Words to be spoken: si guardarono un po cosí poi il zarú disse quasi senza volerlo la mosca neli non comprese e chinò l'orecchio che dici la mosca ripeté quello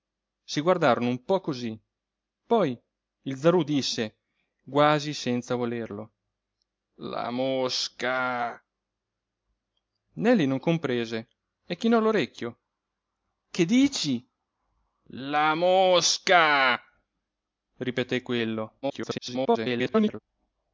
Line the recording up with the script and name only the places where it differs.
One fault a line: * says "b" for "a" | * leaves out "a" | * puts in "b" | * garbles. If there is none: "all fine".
* garbles